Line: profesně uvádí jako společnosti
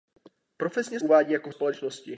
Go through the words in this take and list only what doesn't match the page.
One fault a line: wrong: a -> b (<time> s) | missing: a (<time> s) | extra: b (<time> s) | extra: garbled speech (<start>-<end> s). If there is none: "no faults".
no faults